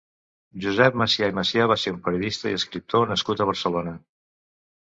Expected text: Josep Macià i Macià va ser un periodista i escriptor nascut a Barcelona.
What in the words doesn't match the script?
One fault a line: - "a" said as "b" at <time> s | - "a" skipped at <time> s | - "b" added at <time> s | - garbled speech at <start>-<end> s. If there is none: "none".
none